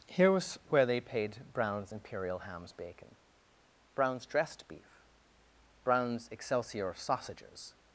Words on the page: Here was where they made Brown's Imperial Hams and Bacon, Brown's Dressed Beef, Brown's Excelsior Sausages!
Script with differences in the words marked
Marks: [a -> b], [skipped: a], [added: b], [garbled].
Here was where they [made -> paid] Brown's Imperial Hams [skipped: and] Bacon, Brown's Dressed Beef, Brown's Excelsior Sausages!